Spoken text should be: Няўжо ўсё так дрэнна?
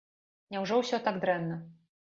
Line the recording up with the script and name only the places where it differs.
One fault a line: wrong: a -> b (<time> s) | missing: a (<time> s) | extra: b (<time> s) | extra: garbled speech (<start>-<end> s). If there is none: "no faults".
no faults